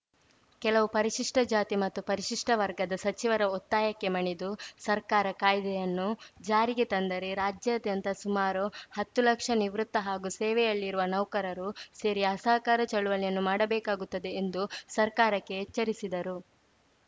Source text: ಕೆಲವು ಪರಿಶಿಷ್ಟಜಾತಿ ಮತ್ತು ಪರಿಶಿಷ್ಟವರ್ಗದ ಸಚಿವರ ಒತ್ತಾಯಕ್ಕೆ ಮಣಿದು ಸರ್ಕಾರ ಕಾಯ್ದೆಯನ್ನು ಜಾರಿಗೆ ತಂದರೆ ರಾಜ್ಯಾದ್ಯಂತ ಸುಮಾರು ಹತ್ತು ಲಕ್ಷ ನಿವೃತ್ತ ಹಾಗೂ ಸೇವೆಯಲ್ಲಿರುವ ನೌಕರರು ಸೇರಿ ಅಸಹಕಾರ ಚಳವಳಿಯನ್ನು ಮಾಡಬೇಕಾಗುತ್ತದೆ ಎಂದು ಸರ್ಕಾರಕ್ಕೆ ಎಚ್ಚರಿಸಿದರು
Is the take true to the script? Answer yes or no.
yes